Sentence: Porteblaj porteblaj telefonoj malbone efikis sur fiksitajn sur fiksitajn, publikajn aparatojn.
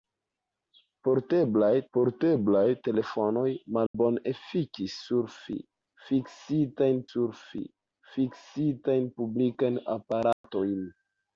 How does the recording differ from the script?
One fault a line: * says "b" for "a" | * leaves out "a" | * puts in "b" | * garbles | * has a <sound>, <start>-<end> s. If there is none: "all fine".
* has a dropout, 3.9-3.9 s
* has a dropout, 10.3-10.4 s